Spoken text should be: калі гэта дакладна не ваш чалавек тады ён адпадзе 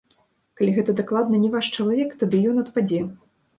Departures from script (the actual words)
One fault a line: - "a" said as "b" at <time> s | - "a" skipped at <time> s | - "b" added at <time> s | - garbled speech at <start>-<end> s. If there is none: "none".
none